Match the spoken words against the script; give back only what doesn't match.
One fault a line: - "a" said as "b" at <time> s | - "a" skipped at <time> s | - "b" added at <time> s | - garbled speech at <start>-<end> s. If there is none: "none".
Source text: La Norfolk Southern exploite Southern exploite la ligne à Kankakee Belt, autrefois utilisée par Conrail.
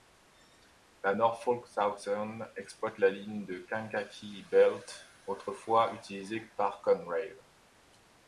- "Southern exploite" skipped at 3.0 s
- "à" said as "de" at 3.5 s